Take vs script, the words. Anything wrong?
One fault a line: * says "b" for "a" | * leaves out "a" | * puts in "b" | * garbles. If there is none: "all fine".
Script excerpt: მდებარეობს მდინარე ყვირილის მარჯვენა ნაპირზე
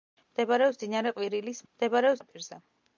* says "მდებარეობს" for "მარჯვენა"